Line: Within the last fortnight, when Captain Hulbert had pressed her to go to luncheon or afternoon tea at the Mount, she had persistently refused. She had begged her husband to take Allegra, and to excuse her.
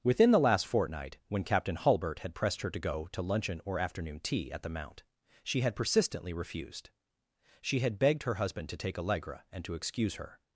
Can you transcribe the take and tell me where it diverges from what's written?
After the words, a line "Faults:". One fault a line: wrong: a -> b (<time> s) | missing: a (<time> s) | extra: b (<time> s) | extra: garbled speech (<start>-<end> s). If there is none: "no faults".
Within the last fortnight, when Captain Hulbert had pressed her to go to luncheon or afternoon tea at the Mount, she had persistently refused. She had begged her husband to take Allegra, and to excuse her.
Faults:
no faults